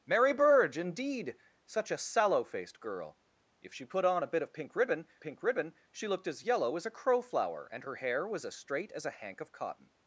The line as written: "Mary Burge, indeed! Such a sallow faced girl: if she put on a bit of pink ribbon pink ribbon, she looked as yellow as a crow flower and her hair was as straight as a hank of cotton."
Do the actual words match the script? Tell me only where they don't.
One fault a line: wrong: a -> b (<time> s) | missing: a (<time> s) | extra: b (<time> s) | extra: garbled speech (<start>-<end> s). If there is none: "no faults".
no faults